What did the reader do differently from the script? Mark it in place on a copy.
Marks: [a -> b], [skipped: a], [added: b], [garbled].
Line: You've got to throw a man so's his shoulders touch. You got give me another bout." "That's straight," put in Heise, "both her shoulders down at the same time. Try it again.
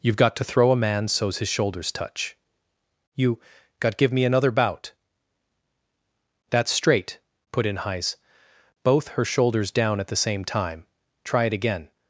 You've got to throw a man so's his shoulders touch. You got give me another bout." "That's straight," put in Heise, "both her shoulders down at the same time. Try it again.